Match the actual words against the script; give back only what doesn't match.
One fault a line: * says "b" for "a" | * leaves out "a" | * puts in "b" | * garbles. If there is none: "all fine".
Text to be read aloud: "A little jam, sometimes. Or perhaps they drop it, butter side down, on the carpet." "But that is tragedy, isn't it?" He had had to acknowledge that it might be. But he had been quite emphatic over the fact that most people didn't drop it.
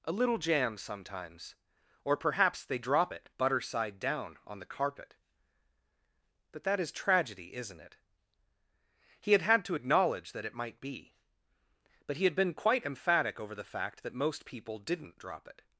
all fine